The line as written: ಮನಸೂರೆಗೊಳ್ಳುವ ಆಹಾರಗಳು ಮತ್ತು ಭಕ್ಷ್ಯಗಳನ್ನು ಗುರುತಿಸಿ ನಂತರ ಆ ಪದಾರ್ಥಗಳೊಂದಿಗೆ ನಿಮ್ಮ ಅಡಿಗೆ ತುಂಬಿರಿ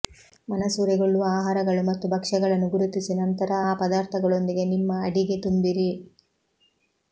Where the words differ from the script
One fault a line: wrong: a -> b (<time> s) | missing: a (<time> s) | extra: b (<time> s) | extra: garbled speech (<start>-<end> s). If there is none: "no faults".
no faults